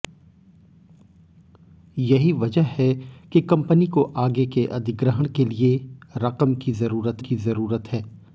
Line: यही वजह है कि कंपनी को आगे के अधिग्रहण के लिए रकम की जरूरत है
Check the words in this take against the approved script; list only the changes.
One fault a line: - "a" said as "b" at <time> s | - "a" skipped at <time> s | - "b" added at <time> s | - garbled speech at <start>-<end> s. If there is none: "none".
- "की जरूरत" added at 7.2 s